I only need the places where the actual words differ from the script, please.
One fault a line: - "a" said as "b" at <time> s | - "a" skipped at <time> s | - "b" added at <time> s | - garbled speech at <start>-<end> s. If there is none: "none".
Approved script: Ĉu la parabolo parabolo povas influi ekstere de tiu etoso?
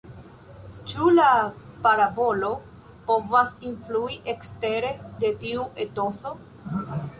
- "parabolo" skipped at 2.5 s